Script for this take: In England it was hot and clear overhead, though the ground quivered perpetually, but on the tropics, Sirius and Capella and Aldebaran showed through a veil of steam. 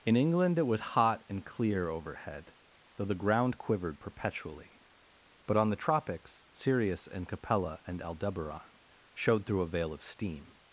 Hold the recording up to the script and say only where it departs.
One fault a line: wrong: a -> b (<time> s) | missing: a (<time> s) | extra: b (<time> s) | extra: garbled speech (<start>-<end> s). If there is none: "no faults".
no faults